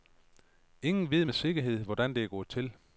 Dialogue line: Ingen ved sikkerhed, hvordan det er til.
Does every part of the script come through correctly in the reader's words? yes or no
no